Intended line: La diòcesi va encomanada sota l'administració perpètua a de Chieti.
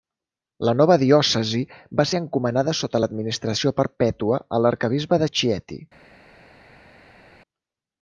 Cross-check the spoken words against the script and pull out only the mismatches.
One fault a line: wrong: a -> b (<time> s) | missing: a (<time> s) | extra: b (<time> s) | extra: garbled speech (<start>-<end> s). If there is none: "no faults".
extra: nova (0.8 s)
extra: ser (2.1 s)
extra: l'arquebisbe (4.7 s)